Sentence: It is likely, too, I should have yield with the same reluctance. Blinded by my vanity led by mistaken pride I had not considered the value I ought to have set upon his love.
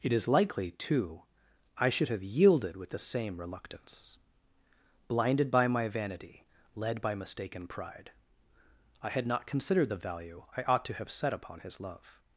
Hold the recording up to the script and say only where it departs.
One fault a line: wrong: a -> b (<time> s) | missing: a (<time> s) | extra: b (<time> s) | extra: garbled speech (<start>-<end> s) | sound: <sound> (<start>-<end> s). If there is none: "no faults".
wrong: yield -> yielded (2.2 s)